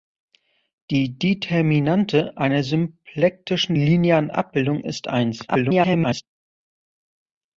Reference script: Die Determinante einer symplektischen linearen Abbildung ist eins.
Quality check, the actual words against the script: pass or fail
fail